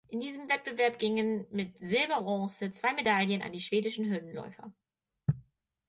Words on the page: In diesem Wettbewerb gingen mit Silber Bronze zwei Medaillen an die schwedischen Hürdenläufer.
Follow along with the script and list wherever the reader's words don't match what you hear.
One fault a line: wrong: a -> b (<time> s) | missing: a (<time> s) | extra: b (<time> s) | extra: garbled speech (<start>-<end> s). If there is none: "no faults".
no faults